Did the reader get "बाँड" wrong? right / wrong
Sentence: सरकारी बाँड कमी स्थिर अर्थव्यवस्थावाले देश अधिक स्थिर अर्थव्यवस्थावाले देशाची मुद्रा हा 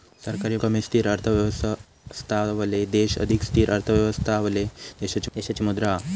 wrong